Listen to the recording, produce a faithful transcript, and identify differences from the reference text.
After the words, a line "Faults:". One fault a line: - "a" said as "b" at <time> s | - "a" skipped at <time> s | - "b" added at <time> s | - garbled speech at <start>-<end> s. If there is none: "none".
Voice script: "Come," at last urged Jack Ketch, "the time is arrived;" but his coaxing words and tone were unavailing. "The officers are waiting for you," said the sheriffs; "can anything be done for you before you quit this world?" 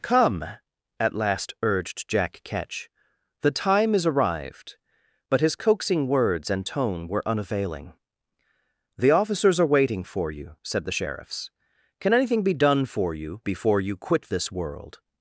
"Come," at last urged Jack Ketch, "the time is arrived;" but his coaxing words and tone were unavailing. "The officers are waiting for you," said the sheriffs; "can anything be done for you before you quit this world?"
Faults:
none